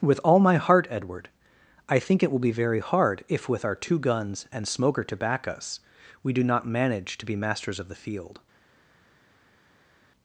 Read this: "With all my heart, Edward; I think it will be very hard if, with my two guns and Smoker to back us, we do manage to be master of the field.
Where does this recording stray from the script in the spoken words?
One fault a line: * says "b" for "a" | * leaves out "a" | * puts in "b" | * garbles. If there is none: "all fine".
* says "our" for "my"
* puts in "not"
* says "masters" for "master"